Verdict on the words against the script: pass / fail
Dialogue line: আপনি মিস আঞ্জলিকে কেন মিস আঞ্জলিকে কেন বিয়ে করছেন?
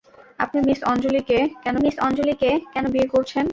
pass